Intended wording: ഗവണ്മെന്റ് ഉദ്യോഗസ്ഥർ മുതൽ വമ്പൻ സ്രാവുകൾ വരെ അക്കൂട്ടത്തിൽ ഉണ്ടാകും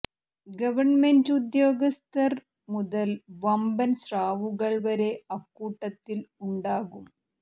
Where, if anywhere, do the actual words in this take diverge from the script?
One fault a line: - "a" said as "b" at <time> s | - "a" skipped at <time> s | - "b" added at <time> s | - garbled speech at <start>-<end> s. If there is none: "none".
none